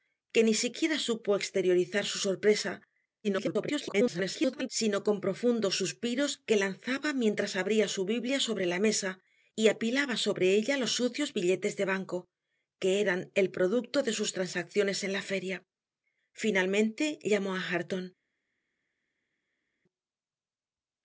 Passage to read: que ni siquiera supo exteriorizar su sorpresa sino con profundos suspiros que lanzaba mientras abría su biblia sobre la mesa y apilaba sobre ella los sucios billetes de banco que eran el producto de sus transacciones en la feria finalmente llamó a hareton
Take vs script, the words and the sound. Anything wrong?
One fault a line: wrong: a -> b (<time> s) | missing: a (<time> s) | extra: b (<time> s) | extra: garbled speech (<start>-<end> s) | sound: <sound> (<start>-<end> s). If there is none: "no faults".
extra: garbled speech (3.2-4.7 s)